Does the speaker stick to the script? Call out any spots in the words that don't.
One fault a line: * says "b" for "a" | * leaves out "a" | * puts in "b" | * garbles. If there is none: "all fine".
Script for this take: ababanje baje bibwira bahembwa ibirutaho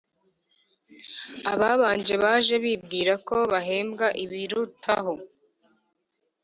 * puts in "ko"